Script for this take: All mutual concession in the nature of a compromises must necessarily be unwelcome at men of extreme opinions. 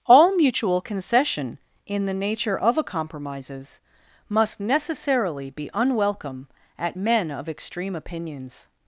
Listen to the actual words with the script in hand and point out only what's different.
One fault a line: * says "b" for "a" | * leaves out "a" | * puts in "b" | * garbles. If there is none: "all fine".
all fine